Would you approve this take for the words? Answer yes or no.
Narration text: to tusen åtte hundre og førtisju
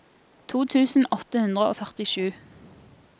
yes